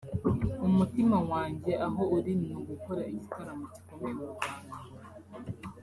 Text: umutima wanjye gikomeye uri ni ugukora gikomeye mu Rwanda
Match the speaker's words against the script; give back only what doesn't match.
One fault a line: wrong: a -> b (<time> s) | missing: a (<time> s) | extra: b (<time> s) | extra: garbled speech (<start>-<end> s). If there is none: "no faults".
wrong: gikomeye -> aho (1.9 s)
extra: igitaramo (3.1 s)